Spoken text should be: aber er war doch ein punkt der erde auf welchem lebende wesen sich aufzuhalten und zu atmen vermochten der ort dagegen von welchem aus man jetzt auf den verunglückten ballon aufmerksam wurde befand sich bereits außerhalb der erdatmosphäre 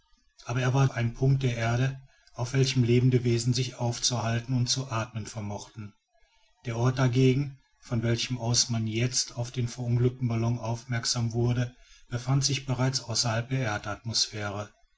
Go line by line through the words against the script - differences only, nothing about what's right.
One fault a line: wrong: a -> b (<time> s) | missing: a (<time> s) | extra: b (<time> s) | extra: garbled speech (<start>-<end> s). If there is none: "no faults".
missing: doch (0.9 s)